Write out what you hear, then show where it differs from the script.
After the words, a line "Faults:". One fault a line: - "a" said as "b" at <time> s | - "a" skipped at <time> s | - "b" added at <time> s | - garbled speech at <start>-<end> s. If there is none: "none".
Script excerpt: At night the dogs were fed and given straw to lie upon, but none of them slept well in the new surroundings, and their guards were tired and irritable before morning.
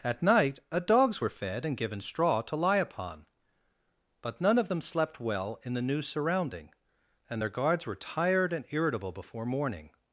At night a dogs were fed and given straw to lie upon, but none of them slept well in the new surrounding, and their guards were tired and irritable before morning.
Faults:
- "the" said as "a" at 0.7 s
- "surroundings" said as "surrounding" at 6.0 s